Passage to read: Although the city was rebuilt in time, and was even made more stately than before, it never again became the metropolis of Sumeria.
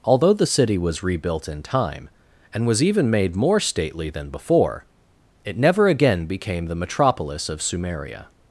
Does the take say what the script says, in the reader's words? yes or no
yes